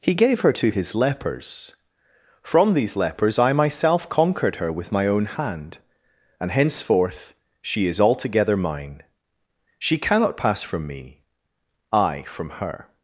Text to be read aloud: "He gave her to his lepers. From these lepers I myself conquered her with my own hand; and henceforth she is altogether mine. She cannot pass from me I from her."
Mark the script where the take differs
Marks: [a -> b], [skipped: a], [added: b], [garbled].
"He gave her to his lepers. From these lepers I myself conquered her with my own hand; and henceforth she is altogether mine. She cannot pass from me I from her."